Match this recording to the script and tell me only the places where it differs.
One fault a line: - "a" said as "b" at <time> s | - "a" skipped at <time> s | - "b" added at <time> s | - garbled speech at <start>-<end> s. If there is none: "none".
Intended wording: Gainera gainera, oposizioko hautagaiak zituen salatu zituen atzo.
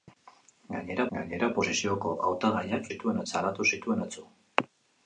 none